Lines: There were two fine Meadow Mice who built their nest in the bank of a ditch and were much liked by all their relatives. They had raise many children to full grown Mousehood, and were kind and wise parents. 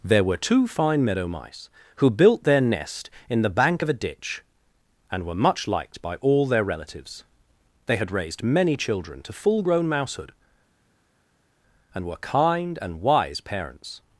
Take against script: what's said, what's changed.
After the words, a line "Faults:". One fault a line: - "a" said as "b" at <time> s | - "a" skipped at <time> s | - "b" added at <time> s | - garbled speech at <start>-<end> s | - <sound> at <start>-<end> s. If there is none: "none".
There were two fine Meadow Mice who built their nest in the bank of a ditch and were much liked by all their relatives. They had raised many children to full grown Mousehood, and were kind and wise parents.
Faults:
- "raise" said as "raised" at 8.1 s